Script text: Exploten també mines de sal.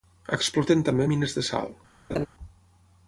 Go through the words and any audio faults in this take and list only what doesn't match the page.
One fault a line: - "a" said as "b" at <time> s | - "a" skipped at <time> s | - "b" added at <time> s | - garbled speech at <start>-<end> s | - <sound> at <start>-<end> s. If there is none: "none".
- laugh at 2.1-2.3 s